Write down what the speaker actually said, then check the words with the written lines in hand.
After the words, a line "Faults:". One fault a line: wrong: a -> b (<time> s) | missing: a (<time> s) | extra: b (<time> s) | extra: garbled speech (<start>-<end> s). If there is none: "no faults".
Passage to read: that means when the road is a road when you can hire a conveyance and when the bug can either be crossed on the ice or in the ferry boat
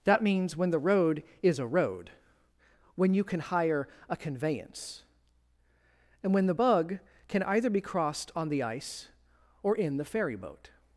that means when the road is a road when you can hire a conveyance and when the bug can either be crossed on the ice or in the ferry boat
Faults:
no faults